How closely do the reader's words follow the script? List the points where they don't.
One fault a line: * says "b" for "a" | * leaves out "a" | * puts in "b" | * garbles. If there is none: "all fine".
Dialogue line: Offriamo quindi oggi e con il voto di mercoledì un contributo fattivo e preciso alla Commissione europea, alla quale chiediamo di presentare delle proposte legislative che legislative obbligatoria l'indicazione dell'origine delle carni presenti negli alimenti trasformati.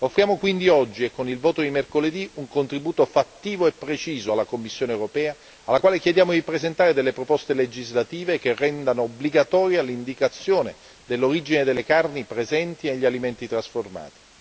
* says "rendano" for "legislative"